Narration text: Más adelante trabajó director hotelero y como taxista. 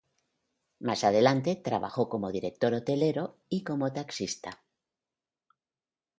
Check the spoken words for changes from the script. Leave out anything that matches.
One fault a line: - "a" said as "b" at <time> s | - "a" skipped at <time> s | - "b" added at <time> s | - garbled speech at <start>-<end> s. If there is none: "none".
- "como" added at 2.1 s